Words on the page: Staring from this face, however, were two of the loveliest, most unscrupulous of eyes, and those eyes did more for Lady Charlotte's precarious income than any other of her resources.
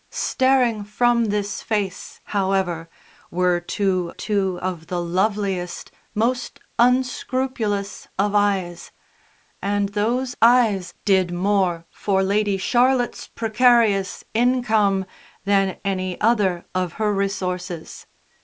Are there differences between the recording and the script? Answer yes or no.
yes